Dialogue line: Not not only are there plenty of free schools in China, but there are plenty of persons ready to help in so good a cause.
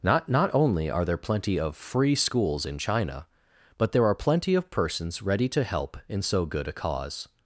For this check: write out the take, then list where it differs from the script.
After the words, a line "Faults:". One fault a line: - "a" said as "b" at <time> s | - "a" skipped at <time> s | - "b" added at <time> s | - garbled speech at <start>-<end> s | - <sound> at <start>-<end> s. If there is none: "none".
Not not only are there plenty of free schools in China, but there are plenty of persons ready to help in so good a cause.
Faults:
none